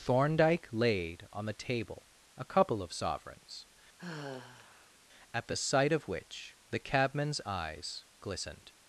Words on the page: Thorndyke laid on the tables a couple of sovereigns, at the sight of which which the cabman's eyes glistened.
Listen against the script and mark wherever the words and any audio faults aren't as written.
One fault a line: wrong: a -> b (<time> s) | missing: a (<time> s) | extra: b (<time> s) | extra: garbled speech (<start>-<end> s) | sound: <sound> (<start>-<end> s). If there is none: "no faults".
wrong: tables -> table (1.5 s)
sound: sigh (4.0-5.0 s)
missing: which (6.6 s)